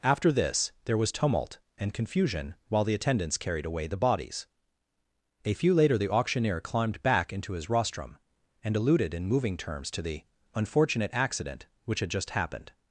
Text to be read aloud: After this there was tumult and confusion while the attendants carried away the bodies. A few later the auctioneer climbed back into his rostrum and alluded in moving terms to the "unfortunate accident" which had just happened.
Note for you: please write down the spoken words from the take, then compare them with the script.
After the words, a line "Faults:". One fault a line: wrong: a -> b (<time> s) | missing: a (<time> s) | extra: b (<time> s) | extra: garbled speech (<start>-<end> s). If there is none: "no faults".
After this there was tumult and confusion while the attendants carried away the bodies. A few later the auctioneer climbed back into his rostrum and alluded in moving terms to the "unfortunate accident" which had just happened.
Faults:
no faults